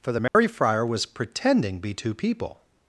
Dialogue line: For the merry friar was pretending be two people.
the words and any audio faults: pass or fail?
fail